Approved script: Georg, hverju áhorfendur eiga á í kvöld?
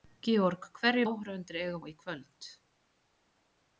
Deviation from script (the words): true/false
false